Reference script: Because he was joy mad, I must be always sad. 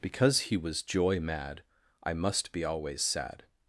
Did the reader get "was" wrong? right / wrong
right